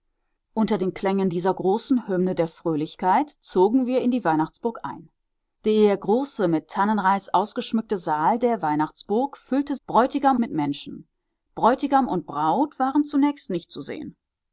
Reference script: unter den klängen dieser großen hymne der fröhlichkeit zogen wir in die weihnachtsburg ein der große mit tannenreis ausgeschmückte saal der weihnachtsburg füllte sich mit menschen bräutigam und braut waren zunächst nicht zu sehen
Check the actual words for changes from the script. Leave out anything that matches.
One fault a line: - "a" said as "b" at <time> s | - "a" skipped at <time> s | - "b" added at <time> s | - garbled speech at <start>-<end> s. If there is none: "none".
- "sich" said as "bräutigam" at 9.9 s